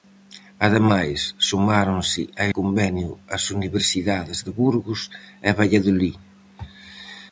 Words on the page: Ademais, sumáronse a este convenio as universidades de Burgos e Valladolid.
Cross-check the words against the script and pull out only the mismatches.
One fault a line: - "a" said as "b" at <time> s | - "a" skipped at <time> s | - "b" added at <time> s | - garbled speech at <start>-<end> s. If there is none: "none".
- "este" skipped at 2.4 s